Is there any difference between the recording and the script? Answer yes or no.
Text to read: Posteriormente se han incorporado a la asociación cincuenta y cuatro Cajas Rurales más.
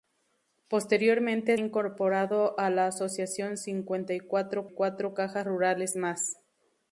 yes